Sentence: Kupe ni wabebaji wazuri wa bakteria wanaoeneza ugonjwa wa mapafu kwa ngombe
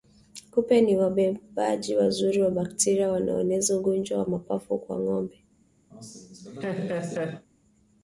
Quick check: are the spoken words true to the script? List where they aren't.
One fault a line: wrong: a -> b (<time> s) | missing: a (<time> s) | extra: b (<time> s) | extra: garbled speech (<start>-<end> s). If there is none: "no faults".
no faults